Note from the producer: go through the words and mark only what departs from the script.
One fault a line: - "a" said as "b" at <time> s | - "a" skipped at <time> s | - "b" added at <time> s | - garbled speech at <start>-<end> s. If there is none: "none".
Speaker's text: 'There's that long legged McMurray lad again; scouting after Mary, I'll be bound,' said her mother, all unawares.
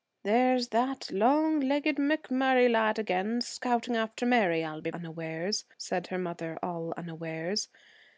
- "bound" said as "unawares" at 4.9 s